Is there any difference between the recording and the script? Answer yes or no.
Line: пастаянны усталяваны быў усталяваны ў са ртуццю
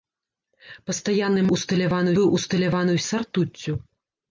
no